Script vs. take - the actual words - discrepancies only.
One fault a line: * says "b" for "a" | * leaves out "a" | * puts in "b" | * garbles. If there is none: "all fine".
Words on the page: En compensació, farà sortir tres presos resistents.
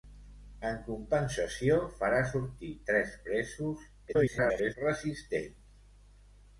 * garbles